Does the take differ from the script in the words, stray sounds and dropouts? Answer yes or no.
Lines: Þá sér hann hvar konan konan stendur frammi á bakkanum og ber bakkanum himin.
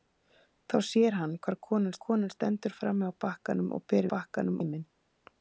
no